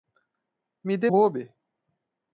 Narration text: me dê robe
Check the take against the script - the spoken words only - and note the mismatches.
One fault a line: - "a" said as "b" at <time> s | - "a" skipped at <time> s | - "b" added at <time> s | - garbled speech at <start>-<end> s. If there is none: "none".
none